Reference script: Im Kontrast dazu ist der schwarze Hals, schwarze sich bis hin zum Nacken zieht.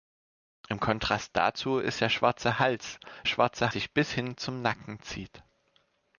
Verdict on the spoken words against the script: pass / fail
pass